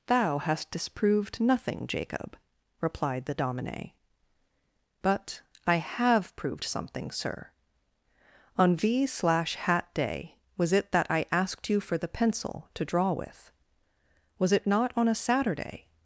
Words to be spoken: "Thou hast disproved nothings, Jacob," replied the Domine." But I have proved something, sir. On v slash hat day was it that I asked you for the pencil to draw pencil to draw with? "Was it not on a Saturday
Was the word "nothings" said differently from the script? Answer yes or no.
yes